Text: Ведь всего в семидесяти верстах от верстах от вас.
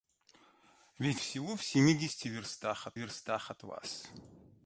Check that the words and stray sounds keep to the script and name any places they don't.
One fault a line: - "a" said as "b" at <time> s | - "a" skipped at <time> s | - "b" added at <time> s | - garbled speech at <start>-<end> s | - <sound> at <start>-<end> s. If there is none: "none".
none